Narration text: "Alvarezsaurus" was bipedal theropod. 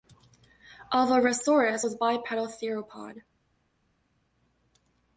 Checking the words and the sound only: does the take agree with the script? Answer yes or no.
yes